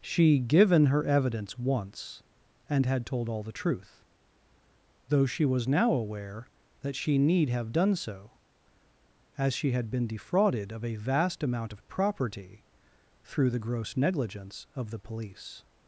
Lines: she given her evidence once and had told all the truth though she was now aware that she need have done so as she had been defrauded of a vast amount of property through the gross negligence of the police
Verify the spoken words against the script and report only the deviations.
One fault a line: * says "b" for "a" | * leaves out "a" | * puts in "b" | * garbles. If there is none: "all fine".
all fine